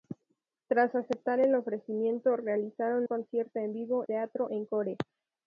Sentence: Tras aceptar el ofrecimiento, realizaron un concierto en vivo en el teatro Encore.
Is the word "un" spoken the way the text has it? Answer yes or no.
no